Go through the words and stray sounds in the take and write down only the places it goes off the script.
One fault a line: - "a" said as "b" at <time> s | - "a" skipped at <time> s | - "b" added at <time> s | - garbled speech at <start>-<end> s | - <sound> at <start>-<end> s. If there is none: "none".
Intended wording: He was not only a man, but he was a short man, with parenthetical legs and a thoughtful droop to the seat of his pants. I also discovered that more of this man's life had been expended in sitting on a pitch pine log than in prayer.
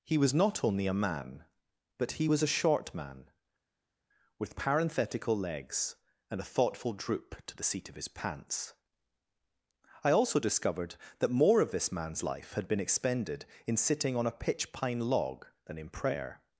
none